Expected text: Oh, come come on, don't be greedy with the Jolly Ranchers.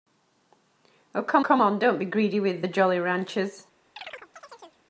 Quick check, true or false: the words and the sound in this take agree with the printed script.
false